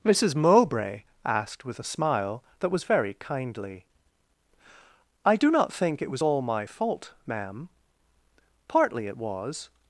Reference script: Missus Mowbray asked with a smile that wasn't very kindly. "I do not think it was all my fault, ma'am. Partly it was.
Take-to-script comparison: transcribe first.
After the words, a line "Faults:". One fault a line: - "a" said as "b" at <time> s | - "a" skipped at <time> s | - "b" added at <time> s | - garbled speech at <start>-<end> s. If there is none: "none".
Missus Mowbray asked with a smile that was very kindly. "I do not think it was all my fault, ma'am. Partly it was.
Faults:
- "wasn't" said as "was" at 2.7 s